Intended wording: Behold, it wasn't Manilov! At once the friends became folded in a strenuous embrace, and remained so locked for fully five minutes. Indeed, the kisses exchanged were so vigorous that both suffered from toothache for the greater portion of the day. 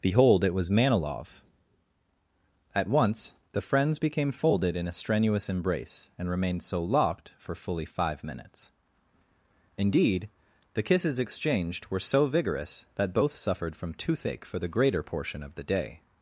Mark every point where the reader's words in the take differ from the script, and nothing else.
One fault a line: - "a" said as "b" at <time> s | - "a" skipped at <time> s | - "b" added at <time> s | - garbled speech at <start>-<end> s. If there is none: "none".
- "wasn't" said as "was" at 0.5 s